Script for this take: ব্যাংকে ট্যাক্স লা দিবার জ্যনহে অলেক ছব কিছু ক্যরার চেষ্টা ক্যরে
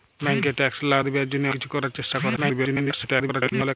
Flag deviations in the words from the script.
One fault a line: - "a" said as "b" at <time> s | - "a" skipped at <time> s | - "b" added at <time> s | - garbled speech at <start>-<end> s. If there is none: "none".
- "অলেক ছব" skipped at 1.5 s
- garbled speech at 2.4-3.8 s